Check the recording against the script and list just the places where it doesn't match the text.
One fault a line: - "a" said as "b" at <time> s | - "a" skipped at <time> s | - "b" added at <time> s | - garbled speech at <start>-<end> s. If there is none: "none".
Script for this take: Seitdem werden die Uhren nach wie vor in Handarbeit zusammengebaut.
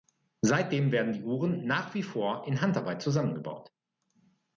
none